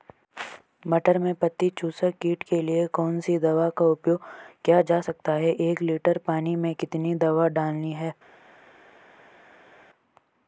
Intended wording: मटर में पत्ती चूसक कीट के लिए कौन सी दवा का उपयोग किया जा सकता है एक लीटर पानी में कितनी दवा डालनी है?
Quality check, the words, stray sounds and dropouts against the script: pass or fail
pass